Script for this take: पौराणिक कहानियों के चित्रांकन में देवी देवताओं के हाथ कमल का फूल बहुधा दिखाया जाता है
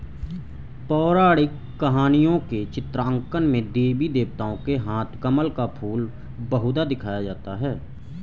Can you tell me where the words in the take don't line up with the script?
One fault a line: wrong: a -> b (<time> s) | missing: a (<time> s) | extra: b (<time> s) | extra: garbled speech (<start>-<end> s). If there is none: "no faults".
no faults